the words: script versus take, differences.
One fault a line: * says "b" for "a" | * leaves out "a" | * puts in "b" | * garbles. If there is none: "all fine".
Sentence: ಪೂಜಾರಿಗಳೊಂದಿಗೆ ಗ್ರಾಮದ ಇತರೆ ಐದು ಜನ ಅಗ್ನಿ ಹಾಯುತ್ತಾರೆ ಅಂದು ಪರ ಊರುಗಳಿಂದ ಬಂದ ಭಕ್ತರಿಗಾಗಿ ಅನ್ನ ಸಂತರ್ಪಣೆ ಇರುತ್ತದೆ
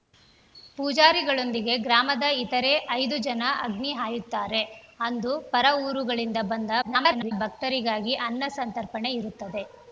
* garbles